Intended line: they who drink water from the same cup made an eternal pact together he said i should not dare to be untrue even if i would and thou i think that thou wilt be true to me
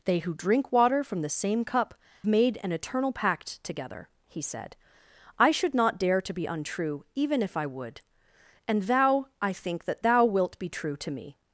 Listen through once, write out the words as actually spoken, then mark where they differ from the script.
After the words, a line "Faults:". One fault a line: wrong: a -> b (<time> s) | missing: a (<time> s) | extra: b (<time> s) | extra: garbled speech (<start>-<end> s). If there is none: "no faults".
they who drink water from the same cup made an eternal pact together he said i should not dare to be untrue even if i would and thou i think that thou wilt be true to me
Faults:
no faults